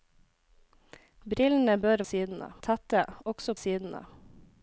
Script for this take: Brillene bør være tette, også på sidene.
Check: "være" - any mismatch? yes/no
yes